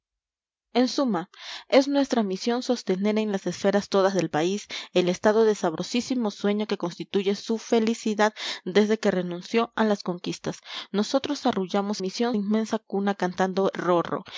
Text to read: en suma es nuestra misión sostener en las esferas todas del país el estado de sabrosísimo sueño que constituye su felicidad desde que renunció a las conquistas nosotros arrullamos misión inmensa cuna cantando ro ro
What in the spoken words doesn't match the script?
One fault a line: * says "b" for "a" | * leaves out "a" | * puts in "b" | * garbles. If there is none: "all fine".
all fine